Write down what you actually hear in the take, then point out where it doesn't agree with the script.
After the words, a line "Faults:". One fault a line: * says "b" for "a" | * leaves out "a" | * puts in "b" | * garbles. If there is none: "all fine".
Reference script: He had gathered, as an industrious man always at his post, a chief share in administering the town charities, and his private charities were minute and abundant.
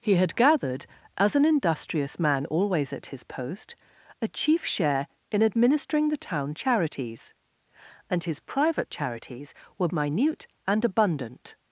He had gathered, as an industrious man always at his post, a chief share in administering the town charities, and his private charities were minute and abundant.
Faults:
all fine